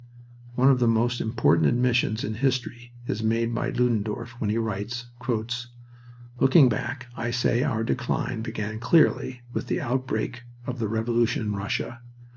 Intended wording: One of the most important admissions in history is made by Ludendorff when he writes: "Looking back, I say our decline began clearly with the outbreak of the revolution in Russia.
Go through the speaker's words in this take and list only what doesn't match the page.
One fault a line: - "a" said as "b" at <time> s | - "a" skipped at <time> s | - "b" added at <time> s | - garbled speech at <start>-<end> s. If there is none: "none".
none